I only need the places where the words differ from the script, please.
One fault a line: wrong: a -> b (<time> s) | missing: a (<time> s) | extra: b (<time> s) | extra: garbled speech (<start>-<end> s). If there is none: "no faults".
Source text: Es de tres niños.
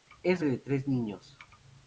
no faults